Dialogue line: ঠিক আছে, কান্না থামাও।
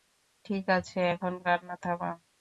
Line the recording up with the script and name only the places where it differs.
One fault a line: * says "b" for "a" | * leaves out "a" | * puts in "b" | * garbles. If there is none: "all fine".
* puts in "এখন"